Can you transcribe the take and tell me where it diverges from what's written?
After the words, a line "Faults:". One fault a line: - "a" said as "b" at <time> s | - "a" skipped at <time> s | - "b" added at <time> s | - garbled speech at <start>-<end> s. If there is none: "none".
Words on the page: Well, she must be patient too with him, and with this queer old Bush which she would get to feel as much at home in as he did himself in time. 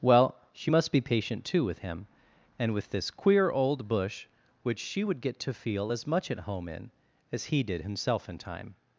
Well, she must be patient too with him, and with this queer old Bush which she would get to feel as much at home in as he did himself in time.
Faults:
none